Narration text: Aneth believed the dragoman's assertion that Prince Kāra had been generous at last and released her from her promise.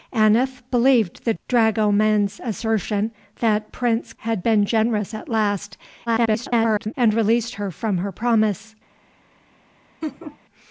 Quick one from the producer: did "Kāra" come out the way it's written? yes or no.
no